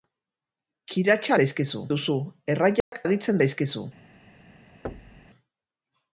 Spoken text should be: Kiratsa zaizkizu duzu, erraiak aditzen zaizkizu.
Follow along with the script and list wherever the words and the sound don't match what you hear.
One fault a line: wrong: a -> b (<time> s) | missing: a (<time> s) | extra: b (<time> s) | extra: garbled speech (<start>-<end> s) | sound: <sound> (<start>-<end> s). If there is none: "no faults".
sound: dropout (2.8-2.9 s)
sound: thud (4.8-5.3 s)